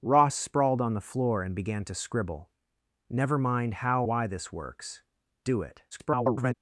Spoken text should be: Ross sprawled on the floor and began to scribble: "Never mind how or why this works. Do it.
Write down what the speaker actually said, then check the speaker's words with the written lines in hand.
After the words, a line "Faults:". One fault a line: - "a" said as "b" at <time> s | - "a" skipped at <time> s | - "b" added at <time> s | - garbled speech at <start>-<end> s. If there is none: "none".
Ross sprawled on the floor and began to scribble: "Never mind how why this works. Do it. [garbled]
Faults:
- "or" skipped at 4.0 s
- garbled speech at 5.9-6.5 s